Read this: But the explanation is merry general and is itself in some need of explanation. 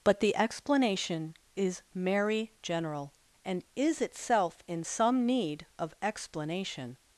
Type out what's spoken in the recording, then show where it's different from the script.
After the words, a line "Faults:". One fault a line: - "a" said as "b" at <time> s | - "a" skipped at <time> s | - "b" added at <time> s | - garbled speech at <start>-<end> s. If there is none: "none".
But the explanation is merry general and is itself in some need of explanation.
Faults:
none